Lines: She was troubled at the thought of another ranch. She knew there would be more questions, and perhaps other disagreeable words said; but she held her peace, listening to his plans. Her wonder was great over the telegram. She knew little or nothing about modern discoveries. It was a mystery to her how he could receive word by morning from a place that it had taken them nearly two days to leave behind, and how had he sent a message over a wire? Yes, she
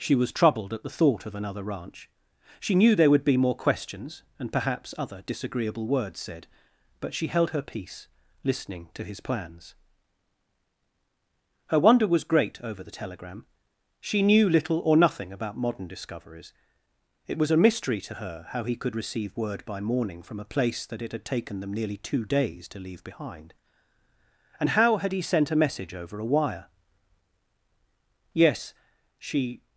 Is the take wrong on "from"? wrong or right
right